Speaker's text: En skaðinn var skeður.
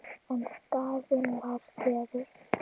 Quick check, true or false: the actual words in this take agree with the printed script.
true